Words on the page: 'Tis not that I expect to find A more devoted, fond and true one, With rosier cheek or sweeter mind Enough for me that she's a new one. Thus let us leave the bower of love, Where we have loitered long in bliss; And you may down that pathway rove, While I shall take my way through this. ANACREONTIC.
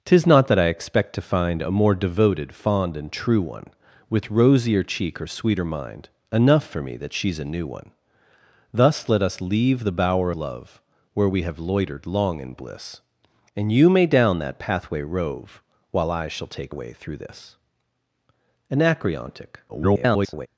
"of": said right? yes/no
no